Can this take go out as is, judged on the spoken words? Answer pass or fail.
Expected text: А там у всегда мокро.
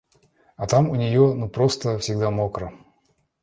fail